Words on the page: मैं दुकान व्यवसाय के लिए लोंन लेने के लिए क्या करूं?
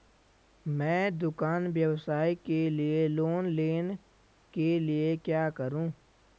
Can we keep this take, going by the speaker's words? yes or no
yes